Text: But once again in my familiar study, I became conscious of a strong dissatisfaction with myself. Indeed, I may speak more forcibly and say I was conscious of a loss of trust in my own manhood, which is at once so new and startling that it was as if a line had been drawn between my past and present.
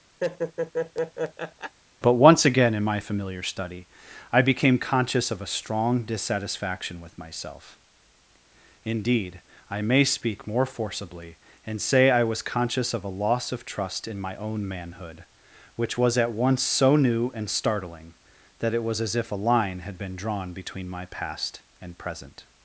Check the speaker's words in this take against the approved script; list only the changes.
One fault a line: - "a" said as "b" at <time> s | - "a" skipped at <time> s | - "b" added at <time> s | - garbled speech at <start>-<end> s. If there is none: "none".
- "is" said as "was" at 16.0 s